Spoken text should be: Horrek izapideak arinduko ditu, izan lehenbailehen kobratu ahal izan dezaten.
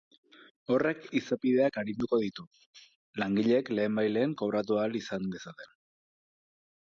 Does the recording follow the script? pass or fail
fail